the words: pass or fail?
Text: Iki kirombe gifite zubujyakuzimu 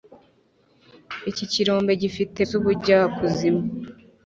pass